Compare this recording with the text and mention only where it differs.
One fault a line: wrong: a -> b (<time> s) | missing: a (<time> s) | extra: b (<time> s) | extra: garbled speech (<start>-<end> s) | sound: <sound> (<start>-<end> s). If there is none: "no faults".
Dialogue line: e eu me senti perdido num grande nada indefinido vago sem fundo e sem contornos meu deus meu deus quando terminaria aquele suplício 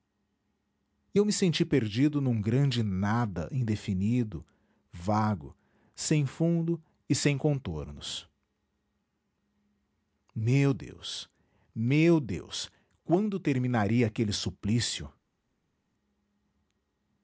no faults